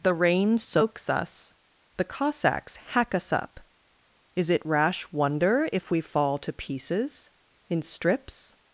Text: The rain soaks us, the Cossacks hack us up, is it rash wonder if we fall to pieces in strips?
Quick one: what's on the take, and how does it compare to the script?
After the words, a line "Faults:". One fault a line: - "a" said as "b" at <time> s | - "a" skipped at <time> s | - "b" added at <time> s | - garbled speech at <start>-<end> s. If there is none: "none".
The rain soaks us, the Cossacks hack us up, is it rash wonder if we fall to pieces in strips?
Faults:
none